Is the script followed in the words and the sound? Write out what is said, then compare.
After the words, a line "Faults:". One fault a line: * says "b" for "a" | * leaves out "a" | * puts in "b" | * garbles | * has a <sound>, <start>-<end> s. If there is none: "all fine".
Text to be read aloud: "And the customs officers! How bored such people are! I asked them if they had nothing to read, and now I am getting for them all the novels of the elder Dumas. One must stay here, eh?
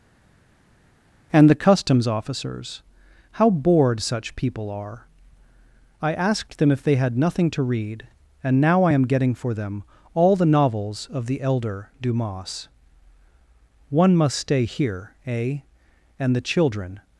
"And the customs officers! How bored such people are! I asked them if they had nothing to read, and now I am getting for them all the novels of the elder Dumas. One must stay here, eh? "And the children
Faults:
* puts in "And the children"